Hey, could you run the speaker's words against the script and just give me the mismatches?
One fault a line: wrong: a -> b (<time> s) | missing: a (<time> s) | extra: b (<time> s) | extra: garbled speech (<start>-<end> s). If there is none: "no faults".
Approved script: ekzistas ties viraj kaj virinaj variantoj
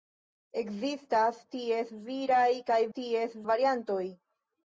wrong: virinaj -> ties (3.0 s)